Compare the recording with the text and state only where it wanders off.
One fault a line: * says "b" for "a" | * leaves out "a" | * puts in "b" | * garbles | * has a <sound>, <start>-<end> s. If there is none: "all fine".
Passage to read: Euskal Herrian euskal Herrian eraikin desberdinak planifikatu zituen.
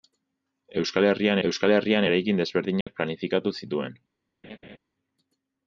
* has a dropout, 2.8-2.9 s
* has a laugh, 4.4-4.8 s